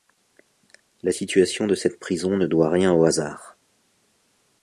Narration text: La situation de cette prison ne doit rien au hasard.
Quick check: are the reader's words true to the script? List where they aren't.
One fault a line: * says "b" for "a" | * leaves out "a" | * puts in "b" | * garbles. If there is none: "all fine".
all fine